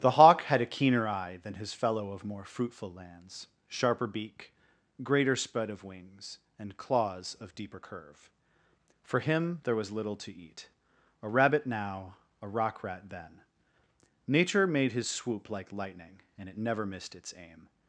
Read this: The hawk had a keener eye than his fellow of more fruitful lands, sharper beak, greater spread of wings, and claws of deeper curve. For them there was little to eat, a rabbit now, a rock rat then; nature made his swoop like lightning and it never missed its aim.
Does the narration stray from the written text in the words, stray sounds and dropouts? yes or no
yes